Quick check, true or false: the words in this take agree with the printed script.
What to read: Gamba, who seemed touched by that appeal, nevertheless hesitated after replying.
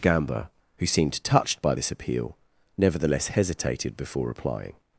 false